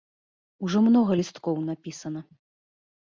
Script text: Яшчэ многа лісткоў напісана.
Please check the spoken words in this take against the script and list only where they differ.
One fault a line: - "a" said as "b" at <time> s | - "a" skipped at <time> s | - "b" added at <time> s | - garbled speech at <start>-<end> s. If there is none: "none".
- "Яшчэ" said as "Ужо" at 0.7 s